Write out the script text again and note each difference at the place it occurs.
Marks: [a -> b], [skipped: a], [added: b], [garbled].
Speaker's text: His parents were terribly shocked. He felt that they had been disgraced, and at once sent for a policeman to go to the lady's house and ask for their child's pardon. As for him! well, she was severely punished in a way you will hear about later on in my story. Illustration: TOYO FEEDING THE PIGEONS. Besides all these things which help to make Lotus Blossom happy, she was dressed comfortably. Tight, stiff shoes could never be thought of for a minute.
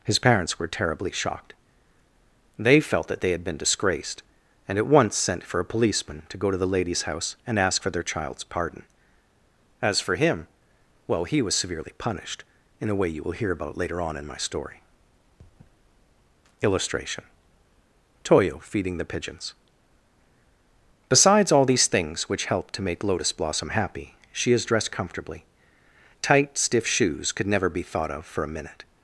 His parents were terribly shocked. [He -> They] felt that they had been disgraced, and at once sent for a policeman to go to the lady's house and ask for their child's pardon. As for him! well, [she -> he] was severely punished in a way you will hear about later on in my story. Illustration: TOYO FEEDING THE PIGEONS. Besides all these things which help to make Lotus Blossom happy, she [was -> is] dressed comfortably. Tight, stiff shoes could never be thought of for a minute.